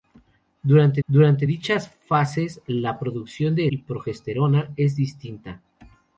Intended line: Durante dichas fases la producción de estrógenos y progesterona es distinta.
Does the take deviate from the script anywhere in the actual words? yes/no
yes